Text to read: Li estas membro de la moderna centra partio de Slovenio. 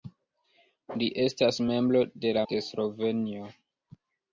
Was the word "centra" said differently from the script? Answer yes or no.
yes